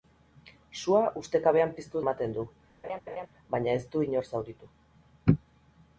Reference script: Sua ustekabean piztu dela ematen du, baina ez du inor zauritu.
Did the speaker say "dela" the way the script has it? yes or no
no